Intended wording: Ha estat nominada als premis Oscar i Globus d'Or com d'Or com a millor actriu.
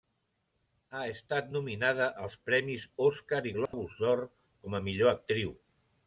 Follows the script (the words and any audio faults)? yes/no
no